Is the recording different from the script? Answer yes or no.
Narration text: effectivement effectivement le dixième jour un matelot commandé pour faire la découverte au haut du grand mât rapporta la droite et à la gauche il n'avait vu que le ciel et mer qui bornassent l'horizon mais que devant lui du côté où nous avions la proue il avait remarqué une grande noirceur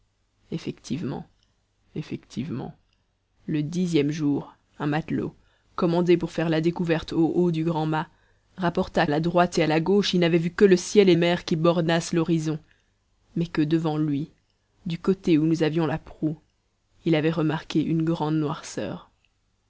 no